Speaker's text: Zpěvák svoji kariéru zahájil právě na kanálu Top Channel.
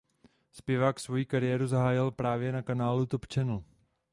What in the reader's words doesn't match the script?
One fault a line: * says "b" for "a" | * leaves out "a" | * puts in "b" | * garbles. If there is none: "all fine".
all fine